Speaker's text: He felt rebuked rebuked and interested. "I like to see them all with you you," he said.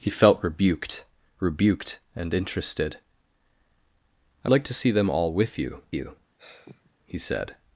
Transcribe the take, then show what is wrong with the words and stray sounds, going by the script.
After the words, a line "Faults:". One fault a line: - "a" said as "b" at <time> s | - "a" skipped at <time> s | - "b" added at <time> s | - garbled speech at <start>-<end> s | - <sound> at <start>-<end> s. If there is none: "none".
He felt rebuked rebuked and interested. "I like to see them all with you you," he said.
Faults:
- sigh at 6.4-7.0 s